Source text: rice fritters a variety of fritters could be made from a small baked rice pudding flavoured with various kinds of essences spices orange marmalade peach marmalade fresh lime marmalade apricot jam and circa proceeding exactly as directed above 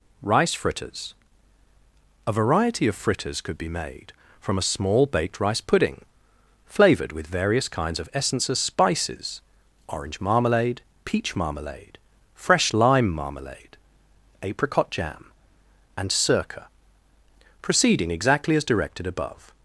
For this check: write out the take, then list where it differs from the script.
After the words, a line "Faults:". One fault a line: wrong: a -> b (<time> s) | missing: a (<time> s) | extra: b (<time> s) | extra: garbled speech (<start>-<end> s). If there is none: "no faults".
rice fritters a variety of fritters could be made from a small baked rice pudding flavoured with various kinds of essences spices orange marmalade peach marmalade fresh lime marmalade apricot jam and circa proceeding exactly as directed above
Faults:
no faults